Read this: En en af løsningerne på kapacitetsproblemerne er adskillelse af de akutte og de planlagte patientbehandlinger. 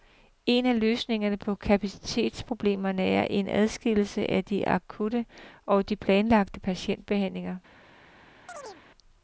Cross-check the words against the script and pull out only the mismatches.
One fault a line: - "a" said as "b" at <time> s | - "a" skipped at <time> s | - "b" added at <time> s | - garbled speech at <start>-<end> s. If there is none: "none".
- "en" skipped at 0.7 s
- "en" added at 3.3 s